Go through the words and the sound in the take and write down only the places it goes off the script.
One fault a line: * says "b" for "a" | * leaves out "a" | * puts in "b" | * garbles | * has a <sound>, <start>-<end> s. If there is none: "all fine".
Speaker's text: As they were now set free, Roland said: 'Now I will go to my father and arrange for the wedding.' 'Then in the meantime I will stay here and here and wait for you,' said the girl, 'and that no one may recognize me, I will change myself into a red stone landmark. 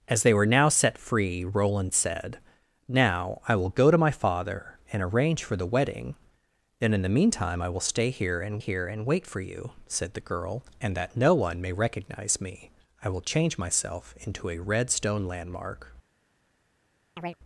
* has a chirp, 17.2-17.4 s